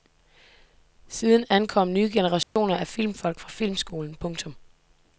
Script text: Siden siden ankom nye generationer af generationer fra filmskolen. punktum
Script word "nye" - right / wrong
right